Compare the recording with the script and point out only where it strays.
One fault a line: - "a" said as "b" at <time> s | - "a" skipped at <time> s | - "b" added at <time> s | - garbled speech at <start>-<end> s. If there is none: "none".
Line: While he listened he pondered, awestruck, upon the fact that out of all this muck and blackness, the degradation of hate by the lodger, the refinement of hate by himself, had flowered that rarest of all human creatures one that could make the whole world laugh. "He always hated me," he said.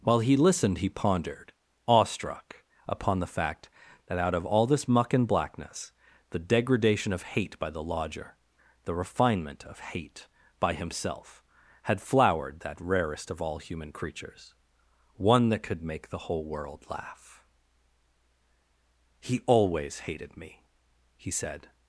none